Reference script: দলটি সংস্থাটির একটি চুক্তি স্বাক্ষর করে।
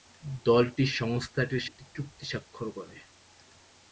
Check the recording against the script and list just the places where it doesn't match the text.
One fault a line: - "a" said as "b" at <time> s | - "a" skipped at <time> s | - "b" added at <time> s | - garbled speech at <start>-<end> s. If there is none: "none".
none